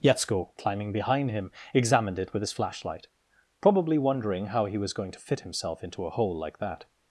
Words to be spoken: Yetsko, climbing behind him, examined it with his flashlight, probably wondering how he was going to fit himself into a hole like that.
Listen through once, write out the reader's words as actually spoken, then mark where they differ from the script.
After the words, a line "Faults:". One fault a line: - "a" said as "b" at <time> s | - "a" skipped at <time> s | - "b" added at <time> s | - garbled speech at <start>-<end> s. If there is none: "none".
Yetsko, climbing behind him, examined it with his flashlight, probably wondering how he was going to fit himself into a hole like that.
Faults:
none